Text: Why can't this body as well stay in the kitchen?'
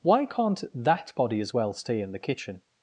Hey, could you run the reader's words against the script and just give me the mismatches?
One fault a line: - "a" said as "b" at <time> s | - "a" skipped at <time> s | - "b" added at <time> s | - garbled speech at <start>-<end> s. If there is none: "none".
- "this" said as "that" at 0.7 s